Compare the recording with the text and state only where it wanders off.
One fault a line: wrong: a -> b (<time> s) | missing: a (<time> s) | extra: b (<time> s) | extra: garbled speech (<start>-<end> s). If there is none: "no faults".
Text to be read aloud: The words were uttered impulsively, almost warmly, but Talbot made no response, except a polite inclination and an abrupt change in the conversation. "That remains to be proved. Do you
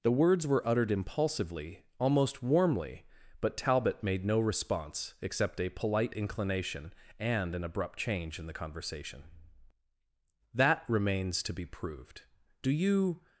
no faults